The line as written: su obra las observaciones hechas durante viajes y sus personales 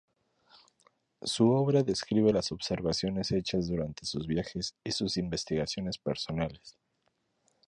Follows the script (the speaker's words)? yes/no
no